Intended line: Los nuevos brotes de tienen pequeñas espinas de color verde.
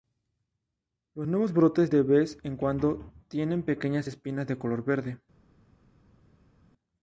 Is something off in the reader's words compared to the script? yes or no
yes